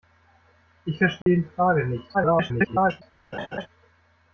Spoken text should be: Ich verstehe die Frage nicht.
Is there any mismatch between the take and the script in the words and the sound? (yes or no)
yes